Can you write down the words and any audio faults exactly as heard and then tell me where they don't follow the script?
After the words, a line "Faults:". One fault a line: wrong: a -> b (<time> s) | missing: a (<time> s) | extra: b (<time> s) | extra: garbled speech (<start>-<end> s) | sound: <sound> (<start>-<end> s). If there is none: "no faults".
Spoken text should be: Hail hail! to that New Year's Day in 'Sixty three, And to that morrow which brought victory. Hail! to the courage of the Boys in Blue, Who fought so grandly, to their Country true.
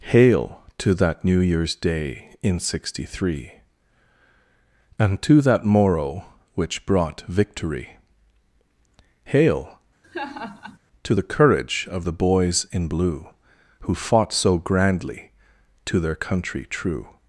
Hail! to that New Year's Day in 'Sixty three, And to that morrow which brought victory. Hail! to the courage of the Boys in Blue, Who fought so grandly, to their Country true.
Faults:
missing: hail (0.6 s)
sound: laugh (10.0-10.8 s)